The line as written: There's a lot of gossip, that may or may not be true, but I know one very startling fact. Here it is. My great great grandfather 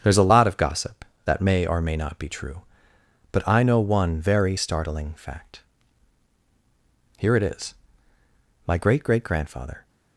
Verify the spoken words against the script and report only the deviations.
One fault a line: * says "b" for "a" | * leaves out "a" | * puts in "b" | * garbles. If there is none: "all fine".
all fine